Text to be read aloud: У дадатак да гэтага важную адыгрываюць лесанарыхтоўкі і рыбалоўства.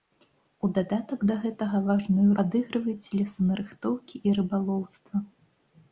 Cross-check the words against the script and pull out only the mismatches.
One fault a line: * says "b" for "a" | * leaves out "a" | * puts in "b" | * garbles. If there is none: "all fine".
all fine